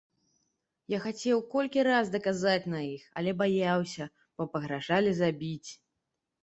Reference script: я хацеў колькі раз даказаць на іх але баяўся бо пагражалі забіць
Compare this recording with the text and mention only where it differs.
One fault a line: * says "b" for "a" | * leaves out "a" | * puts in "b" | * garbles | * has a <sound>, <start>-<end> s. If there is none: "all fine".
all fine